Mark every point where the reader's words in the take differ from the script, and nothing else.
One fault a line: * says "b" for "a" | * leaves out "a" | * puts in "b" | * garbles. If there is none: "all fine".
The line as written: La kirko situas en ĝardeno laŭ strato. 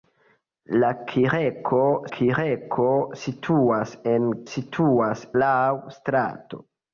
* puts in "kirko"
* says "situas" for "ĝardeno"